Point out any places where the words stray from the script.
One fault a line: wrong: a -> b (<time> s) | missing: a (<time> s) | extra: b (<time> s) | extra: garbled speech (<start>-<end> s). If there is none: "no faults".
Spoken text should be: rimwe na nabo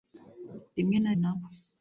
no faults